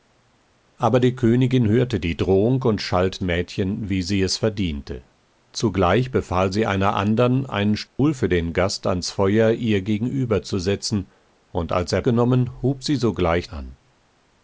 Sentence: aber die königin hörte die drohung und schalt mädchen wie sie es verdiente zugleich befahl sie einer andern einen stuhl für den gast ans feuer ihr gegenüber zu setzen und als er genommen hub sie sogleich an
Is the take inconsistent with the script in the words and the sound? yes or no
yes